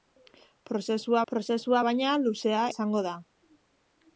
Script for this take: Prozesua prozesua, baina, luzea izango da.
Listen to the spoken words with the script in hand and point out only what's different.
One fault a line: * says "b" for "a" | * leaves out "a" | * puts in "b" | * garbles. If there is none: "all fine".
all fine